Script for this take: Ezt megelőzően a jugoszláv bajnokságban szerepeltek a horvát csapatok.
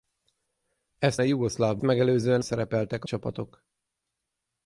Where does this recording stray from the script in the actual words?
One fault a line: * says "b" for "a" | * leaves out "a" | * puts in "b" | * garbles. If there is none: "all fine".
* leaves out "megelőzően"
* says "megelőzően" for "bajnokságban"
* leaves out "horvát"